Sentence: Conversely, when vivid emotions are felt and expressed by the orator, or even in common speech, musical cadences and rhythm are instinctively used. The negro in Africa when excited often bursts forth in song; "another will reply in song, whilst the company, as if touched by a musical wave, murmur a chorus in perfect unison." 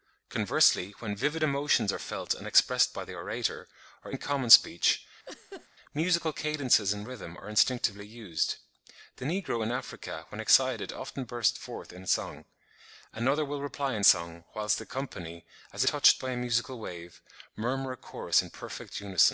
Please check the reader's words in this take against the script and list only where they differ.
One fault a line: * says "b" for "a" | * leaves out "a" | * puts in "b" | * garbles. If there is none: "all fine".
* leaves out "even"
* leaves out "if"